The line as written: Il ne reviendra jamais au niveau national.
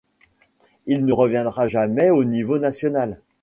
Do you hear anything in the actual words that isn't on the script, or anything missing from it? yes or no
no